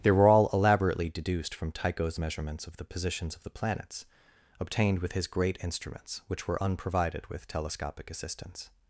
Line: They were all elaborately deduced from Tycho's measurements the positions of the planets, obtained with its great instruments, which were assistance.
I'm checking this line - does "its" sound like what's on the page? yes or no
no